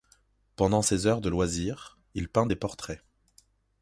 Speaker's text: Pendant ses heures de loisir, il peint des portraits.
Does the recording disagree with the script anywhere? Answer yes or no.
no